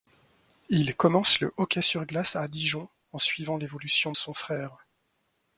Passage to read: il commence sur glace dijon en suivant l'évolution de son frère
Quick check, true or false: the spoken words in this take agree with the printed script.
false